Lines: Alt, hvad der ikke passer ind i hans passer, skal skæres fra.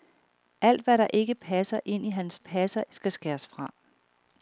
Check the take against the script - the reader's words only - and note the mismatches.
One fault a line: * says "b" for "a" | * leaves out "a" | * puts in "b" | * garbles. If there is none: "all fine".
all fine